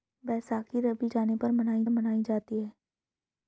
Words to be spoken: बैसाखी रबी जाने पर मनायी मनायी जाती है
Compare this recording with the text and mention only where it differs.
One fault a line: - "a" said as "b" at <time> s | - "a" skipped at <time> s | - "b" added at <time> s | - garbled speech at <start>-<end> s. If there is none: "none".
none